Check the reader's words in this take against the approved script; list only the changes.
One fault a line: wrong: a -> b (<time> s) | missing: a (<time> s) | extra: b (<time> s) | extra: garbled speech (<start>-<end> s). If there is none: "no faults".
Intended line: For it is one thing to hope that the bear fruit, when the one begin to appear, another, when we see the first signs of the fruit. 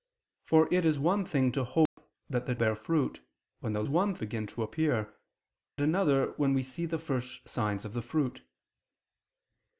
no faults